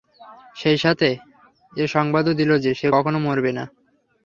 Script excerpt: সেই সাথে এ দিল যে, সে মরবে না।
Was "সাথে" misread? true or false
false